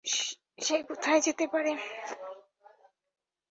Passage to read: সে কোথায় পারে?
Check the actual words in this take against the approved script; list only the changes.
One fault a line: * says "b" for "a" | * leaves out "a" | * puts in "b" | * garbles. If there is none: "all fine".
* puts in "যেতে"